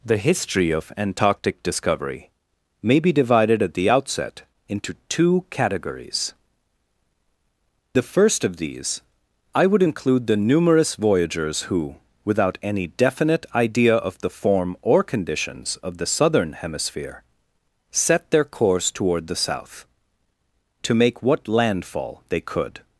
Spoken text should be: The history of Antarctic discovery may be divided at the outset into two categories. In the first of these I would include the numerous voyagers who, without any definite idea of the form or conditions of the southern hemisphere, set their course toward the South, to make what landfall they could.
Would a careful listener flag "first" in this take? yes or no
no